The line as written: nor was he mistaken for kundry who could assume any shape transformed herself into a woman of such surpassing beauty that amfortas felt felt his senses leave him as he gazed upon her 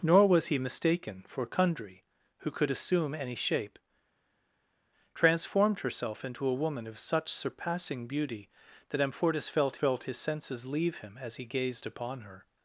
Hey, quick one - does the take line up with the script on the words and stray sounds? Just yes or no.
yes